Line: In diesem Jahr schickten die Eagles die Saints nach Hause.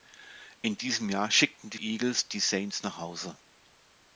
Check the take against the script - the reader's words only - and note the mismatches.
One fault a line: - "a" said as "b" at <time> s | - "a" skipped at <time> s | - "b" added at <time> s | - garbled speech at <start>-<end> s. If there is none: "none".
none